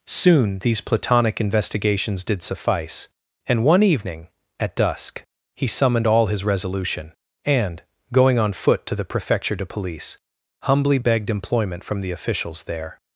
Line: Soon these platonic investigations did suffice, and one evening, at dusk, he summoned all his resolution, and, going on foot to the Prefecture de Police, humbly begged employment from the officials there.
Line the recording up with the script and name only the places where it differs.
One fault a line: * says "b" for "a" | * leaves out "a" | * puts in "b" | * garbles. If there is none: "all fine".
all fine